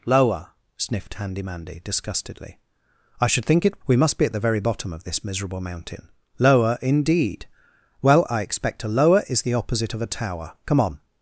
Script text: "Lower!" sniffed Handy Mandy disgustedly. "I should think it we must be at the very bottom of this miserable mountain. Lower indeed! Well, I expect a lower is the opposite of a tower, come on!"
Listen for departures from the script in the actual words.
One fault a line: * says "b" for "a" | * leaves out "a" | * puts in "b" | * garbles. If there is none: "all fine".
all fine